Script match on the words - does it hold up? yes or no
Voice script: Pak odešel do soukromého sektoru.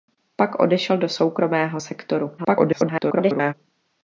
no